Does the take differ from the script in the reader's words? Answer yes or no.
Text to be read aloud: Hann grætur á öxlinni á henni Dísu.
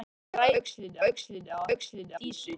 yes